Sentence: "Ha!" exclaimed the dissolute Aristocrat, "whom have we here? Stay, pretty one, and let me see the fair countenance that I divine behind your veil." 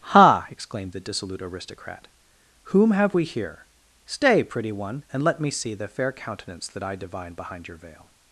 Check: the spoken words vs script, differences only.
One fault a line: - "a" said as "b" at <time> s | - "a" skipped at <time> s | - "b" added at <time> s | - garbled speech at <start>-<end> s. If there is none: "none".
none